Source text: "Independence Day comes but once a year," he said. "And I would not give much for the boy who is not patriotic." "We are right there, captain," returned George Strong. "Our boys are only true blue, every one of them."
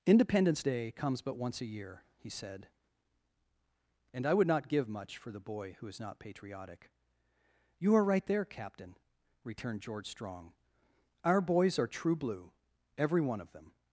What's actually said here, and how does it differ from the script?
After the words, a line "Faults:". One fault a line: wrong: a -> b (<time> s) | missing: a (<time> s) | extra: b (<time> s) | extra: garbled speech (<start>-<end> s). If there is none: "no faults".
"Independence Day comes but once a year," he said. "And I would not give much for the boy who is not patriotic." "You are right there, captain," returned George Strong. "Our boys are true blue, every one of them."
Faults:
wrong: We -> You (7.8 s)
missing: only (11.9 s)